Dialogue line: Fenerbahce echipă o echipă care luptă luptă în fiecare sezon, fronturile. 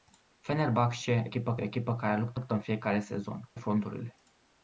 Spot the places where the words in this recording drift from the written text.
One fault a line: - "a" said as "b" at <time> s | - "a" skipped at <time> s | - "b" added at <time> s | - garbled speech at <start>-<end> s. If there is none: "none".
none